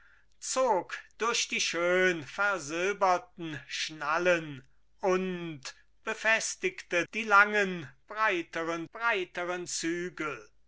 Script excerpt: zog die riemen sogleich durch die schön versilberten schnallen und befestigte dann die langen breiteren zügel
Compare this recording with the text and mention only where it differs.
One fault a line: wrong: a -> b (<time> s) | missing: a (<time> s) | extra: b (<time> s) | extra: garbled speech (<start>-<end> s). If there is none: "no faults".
missing: die riemen sogleich (1.0 s)
missing: dann (7.0 s)
extra: breiteren (8.9 s)